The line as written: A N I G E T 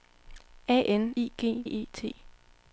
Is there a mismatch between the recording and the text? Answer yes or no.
no